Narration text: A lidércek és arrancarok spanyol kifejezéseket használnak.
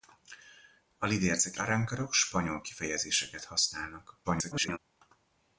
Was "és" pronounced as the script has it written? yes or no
no